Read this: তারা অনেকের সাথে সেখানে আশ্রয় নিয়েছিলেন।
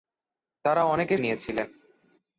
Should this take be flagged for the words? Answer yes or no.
yes